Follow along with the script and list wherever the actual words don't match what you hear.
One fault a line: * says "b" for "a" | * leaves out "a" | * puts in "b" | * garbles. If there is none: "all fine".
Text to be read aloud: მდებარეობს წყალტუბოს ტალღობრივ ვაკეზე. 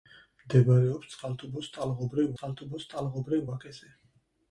* puts in "წყალტუბოს ტალღობრივ"